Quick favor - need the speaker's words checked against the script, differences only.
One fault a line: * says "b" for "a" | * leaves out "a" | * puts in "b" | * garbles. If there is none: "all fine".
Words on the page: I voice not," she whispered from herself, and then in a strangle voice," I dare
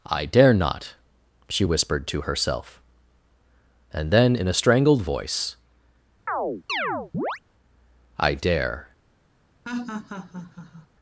* says "dare" for "voice"
* says "to" for "from"
* says "strangled" for "strangle"